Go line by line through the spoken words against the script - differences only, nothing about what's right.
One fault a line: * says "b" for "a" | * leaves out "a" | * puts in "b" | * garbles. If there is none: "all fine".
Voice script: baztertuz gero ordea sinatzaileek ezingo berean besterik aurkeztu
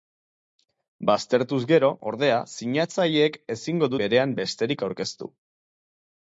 all fine